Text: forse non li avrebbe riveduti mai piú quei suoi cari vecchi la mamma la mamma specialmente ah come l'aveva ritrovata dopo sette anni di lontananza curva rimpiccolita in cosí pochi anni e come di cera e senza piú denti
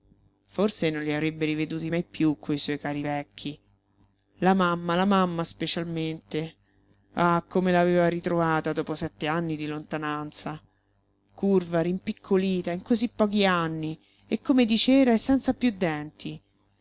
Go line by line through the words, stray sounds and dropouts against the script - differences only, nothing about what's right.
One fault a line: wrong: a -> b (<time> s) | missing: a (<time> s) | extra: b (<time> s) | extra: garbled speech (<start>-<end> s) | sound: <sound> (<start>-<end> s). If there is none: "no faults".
no faults